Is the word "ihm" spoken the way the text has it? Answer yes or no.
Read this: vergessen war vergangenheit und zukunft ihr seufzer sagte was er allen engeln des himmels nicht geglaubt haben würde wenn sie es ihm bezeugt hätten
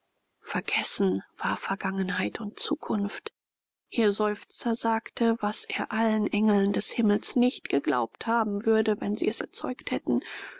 no